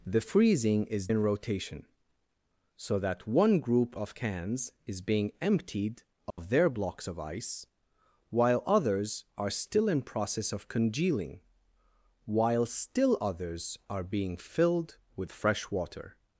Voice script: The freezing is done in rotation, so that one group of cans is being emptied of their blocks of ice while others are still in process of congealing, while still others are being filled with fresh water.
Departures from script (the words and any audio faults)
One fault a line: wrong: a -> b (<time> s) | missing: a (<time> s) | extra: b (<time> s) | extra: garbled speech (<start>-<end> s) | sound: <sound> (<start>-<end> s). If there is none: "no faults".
missing: done (1.1 s)
sound: dropout (6.3-6.4 s)